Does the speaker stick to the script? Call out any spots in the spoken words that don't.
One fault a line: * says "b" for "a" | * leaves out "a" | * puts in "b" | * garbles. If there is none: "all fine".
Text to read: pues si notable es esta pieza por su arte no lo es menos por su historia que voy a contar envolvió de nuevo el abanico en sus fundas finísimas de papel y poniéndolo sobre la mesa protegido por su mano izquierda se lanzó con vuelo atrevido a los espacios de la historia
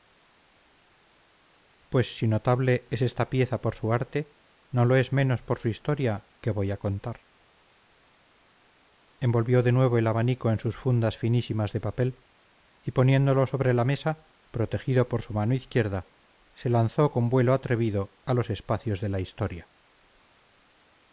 all fine